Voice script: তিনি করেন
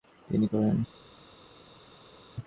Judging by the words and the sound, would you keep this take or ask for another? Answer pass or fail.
pass